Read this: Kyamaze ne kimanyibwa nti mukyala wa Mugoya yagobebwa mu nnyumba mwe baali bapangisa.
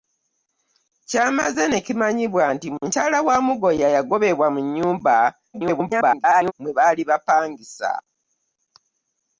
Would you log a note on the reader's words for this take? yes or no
yes